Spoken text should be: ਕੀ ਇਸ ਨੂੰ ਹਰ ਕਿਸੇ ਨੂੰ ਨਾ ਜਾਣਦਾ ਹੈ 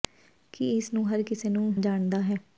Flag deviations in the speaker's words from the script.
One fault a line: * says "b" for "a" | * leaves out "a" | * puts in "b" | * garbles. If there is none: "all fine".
* leaves out "ਨਾ"